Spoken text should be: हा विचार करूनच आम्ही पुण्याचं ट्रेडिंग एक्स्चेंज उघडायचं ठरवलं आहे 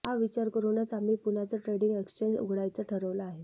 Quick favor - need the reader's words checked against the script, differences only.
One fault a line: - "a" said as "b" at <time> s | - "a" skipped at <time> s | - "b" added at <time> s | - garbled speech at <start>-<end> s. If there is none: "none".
none